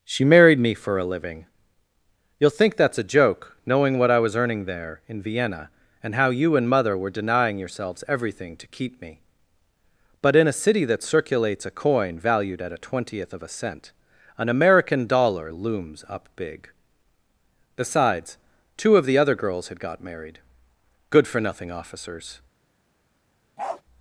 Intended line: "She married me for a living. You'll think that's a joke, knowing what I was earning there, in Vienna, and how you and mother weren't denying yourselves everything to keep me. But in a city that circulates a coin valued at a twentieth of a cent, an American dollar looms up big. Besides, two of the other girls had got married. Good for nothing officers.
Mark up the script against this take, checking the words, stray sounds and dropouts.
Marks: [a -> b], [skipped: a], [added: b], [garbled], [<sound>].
"She married me for a living. You'll think that's a joke, knowing what I was earning there, in Vienna, and how you and mother [weren't -> were] denying yourselves everything to keep me. But in a city that circulates a coin valued at a twentieth of a cent, an American dollar looms up big. Besides, two of the other girls had got married. Good for nothing officers. [bark]